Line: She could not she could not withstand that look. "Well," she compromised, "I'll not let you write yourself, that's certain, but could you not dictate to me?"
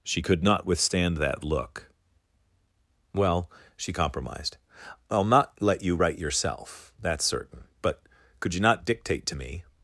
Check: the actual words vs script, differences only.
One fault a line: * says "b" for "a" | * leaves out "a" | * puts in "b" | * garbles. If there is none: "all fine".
* leaves out "she could not"